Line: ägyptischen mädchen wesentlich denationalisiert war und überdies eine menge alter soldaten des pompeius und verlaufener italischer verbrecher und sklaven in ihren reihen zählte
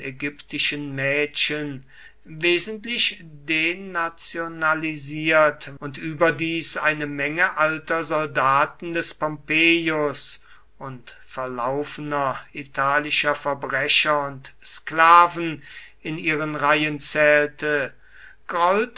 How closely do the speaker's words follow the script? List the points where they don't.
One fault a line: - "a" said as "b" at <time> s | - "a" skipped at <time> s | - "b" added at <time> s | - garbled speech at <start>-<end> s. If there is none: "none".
- "war" skipped at 5.8 s